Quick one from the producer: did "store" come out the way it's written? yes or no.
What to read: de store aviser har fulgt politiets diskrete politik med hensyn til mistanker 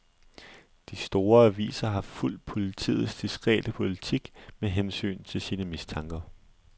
yes